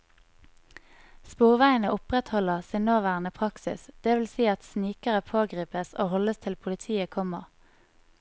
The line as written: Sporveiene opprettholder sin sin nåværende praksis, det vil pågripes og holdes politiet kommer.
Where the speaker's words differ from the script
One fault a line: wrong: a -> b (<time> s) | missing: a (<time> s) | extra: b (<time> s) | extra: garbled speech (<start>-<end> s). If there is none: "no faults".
missing: sin (2.8 s)
extra: si at snikere (4.3 s)
extra: til (6.4 s)